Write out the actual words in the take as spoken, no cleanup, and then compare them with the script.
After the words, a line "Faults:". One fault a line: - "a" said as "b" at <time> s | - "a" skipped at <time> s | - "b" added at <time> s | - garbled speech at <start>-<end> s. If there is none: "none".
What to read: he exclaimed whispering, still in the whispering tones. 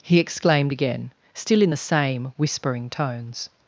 he exclaimed again, still in the same whispering tones.
Faults:
- "whispering" said as "again" at 0.7 s
- "same" added at 1.8 s